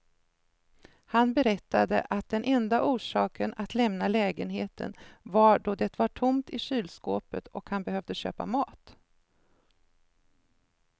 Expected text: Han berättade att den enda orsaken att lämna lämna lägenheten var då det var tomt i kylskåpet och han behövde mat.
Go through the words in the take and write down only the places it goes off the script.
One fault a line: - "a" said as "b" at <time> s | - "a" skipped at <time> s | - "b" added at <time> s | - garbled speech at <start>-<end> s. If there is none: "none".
- "lämna" skipped at 4.1 s
- "köpa" added at 8.2 s